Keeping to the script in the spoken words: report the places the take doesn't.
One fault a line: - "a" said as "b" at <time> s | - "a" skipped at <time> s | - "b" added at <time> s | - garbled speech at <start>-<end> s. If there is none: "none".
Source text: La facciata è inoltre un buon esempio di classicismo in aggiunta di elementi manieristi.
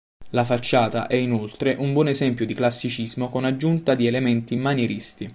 - "in" said as "con" at 3.3 s